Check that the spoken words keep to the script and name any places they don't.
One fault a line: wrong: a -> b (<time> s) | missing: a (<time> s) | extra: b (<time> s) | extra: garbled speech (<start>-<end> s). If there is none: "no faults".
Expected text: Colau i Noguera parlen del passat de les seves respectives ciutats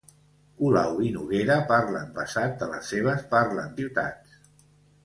missing: del (2.1 s)
wrong: respectives -> parlen (3.4 s)